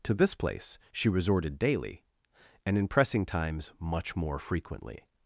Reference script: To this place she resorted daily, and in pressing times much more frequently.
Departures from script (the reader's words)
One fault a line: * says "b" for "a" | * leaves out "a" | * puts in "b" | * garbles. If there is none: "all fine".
all fine